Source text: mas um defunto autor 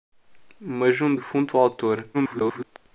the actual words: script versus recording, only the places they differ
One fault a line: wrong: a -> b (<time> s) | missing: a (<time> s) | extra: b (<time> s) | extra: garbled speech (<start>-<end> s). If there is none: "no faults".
extra: garbled speech (2.1-2.6 s)